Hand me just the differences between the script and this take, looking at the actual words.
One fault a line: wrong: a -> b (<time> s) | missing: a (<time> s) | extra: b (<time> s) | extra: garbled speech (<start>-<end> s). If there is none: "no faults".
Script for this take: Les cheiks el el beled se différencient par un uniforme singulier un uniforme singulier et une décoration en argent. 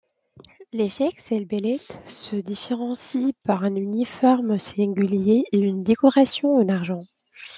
missing: el (1.4 s)
missing: un uniforme singulier (5.4 s)